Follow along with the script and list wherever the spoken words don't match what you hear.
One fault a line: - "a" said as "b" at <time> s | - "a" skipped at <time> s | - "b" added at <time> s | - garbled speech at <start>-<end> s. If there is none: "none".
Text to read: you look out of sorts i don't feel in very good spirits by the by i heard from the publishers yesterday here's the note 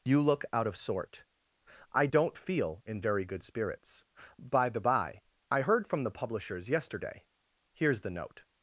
- "sorts" said as "sort" at 0.8 s